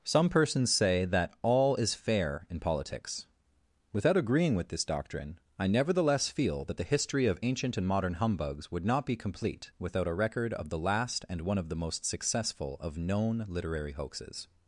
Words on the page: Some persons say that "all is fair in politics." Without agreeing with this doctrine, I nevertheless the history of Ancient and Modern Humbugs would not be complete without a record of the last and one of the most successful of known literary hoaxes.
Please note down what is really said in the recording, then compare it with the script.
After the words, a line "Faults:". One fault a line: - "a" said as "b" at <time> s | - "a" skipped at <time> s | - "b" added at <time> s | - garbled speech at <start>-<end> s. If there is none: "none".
Some persons say that "all is fair in politics." Without agreeing with this doctrine, I nevertheless feel that the history of Ancient and Modern Humbugs would not be complete without a record of the last and one of the most successful of known literary hoaxes.
Faults:
- "feel that" added at 6.3 s